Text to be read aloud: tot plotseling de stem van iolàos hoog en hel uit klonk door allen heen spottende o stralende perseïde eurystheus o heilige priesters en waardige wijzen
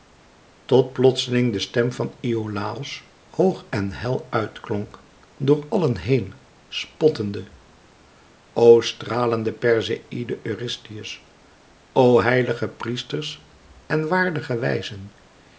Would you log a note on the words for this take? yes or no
no